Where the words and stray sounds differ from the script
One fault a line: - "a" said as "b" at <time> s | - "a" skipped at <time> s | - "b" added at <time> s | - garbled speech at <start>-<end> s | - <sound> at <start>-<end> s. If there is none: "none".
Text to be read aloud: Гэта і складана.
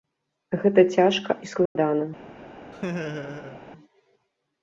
- "цяжка" added at 0.9 s
- dropout at 1.7-1.8 s
- laugh at 2.7-3.6 s